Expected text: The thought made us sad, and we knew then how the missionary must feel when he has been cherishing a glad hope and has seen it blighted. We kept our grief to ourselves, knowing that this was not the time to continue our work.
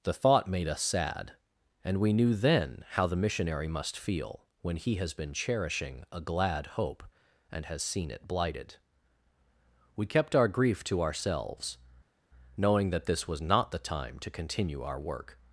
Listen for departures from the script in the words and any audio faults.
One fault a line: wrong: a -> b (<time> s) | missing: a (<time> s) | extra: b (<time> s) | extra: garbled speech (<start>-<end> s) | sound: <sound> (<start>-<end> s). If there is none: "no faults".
no faults